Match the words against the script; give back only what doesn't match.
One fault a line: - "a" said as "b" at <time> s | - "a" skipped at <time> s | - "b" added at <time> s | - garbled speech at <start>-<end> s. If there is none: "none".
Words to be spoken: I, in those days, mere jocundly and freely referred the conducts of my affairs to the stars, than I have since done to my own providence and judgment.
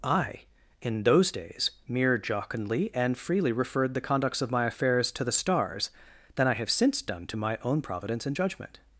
none